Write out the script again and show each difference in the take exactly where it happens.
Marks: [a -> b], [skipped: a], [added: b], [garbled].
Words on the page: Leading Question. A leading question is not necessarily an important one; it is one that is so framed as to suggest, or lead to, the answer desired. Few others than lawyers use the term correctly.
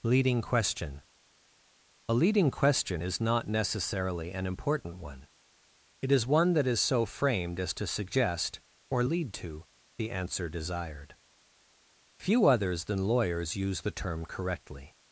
Leading Question. A leading question is not necessarily an important one; it is one that is so framed as to suggest, or lead to, the answer desired. Few others than lawyers use the term correctly.